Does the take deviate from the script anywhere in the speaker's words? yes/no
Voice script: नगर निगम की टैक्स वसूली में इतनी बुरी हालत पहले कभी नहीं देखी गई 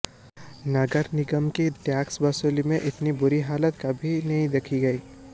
yes